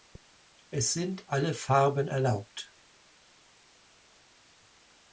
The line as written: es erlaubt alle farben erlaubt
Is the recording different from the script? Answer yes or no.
yes